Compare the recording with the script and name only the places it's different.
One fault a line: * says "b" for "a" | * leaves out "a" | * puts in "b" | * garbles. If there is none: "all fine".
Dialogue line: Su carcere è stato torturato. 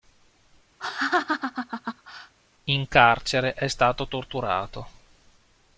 * says "In" for "Su"